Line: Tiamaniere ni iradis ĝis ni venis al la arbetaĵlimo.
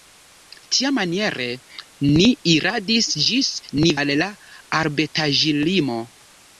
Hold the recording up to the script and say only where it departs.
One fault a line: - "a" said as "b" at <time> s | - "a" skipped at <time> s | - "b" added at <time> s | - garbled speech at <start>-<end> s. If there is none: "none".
- "venis" skipped at 4.0 s